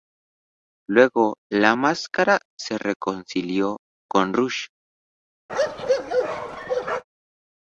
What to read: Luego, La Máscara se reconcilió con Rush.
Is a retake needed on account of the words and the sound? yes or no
yes